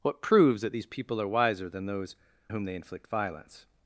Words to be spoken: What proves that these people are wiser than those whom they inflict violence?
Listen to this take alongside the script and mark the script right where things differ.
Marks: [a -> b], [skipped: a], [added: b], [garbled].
What proves that these people are wiser than those whom they inflict violence?